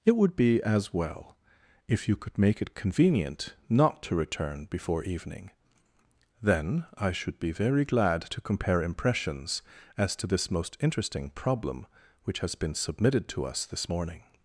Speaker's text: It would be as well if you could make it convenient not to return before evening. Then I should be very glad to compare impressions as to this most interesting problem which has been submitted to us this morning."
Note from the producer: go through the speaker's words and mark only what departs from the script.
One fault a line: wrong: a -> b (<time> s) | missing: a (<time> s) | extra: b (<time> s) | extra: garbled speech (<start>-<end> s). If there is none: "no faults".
no faults